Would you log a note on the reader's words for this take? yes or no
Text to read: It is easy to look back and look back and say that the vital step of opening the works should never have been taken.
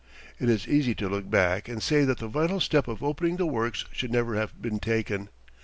yes